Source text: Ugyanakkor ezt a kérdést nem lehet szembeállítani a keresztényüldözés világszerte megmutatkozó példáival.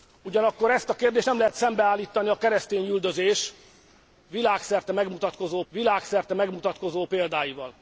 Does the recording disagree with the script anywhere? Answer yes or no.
yes